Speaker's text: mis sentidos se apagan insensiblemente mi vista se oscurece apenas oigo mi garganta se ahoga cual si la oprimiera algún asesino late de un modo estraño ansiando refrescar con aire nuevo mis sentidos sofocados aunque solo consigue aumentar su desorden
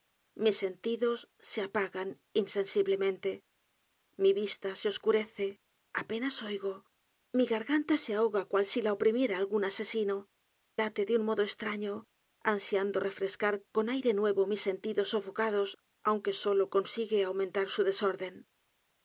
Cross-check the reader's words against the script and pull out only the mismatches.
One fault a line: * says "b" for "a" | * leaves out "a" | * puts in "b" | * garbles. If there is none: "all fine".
all fine